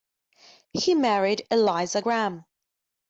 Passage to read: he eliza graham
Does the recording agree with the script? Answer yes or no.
no